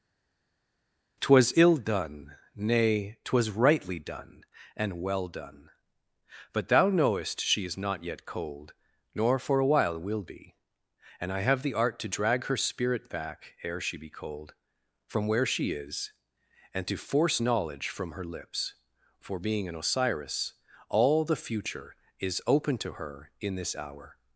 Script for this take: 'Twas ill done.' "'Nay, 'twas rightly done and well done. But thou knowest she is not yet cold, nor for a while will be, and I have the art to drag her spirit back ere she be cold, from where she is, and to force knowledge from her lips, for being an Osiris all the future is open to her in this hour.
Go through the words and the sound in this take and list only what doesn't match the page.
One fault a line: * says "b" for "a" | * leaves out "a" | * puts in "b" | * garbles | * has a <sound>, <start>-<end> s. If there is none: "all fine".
all fine